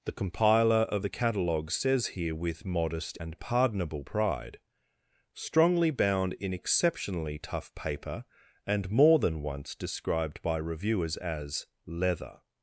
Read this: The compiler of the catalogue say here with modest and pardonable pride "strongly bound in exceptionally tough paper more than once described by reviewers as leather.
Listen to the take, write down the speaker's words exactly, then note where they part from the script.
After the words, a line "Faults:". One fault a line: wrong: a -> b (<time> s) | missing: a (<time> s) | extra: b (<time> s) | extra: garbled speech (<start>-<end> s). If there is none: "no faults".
The compiler of the catalogue says here with modest and pardonable pride "strongly bound in exceptionally tough paper and more than once described by reviewers as leather.
Faults:
wrong: say -> says (1.7 s)
extra: and (8.7 s)